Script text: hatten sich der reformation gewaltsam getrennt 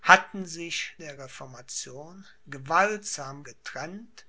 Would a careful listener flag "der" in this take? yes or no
no